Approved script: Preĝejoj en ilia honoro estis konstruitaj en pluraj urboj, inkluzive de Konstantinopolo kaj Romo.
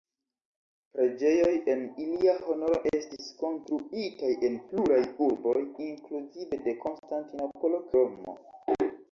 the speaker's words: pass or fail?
fail